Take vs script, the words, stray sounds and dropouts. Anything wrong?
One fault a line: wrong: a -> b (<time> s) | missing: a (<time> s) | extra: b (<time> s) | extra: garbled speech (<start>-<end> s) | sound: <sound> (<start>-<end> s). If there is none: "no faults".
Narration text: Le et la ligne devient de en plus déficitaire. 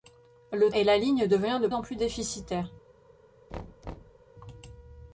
sound: thud (3.5-4.2 s)